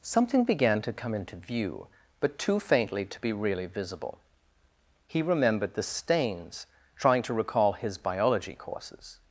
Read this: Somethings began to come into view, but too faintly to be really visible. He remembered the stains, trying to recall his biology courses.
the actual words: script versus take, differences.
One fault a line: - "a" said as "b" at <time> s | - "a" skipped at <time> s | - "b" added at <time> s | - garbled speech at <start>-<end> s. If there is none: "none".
- "Somethings" said as "Something" at 0.0 s